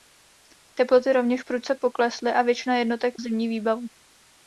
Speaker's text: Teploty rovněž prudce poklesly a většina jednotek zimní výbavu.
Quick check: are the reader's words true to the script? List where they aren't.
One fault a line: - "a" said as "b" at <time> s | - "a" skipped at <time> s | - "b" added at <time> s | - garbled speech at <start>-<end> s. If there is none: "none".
none